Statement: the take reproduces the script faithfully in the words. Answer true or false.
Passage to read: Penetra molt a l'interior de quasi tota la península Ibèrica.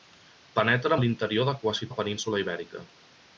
false